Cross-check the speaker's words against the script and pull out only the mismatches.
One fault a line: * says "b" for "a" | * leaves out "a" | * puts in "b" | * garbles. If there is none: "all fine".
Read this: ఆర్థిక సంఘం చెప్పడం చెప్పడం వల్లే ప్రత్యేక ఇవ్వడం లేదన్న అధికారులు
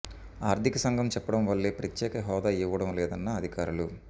* leaves out "చెప్పడం"
* puts in "హోదా"